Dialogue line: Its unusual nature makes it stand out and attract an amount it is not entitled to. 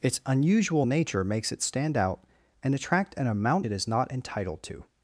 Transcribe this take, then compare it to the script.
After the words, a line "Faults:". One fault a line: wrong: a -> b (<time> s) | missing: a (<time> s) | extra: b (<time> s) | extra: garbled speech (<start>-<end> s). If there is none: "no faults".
Its unusual nature makes it stand out and attract an amount it is not entitled to.
Faults:
no faults